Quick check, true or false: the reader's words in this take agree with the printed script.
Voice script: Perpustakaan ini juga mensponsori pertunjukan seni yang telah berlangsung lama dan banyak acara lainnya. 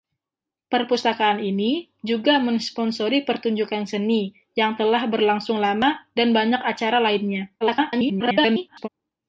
false